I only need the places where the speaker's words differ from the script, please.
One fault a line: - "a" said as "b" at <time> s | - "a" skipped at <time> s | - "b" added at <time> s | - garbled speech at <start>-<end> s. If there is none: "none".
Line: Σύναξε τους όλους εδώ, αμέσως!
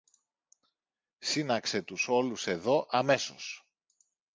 none